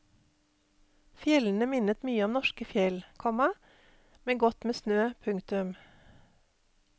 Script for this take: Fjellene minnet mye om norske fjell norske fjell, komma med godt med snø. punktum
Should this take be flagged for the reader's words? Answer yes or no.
yes